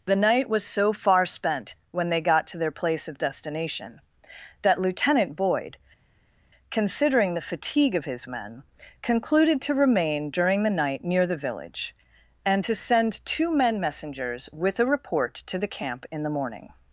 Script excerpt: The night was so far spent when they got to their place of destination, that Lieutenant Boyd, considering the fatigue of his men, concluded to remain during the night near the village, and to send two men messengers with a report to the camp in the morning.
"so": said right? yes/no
yes